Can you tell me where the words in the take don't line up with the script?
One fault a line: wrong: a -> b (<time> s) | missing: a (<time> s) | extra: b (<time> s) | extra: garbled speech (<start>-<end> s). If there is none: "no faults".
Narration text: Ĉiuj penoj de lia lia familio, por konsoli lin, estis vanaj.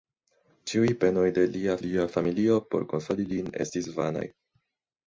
no faults